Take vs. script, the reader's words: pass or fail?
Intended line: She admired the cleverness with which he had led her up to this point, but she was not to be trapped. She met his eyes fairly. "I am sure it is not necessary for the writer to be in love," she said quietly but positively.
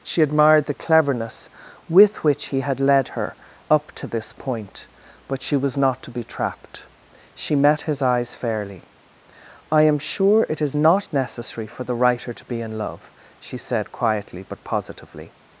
pass